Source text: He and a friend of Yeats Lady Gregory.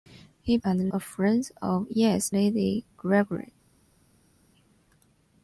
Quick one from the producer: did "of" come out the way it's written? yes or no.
yes